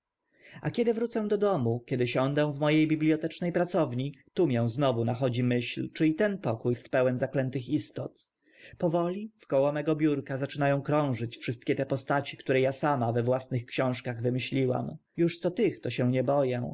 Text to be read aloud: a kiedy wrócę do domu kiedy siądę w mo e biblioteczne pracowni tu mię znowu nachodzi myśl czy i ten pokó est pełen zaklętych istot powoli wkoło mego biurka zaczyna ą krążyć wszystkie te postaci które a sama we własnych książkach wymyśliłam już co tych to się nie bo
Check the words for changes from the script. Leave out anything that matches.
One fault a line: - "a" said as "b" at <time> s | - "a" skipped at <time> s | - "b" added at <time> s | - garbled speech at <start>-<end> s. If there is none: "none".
none